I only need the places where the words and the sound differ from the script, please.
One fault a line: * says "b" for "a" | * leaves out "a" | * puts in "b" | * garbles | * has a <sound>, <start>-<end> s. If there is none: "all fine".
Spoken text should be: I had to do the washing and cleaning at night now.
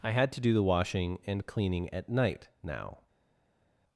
all fine